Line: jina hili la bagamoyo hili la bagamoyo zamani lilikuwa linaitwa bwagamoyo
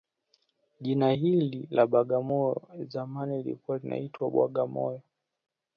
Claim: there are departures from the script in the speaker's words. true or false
true